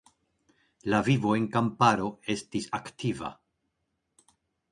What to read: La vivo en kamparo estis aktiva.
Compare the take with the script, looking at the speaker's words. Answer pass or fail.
pass